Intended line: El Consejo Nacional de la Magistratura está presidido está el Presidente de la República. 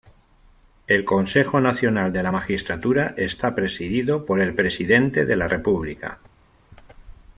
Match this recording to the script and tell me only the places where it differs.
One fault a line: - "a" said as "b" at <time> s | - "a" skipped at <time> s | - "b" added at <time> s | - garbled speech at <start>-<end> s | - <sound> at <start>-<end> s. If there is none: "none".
- "está" said as "por" at 4.2 s